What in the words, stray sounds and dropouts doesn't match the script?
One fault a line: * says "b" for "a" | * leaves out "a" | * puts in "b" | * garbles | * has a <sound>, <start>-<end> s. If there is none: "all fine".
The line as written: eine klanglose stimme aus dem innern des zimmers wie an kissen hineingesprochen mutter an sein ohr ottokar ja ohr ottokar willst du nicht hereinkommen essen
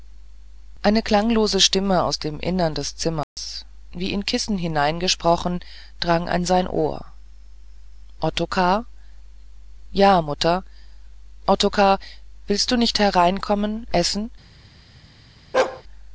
* has a dropout, 3.2-3.4 s
* says "in" for "an"
* says "drang" for "mutter"
* says "mutter" for "ohr"
* has a bark, 15.5-15.8 s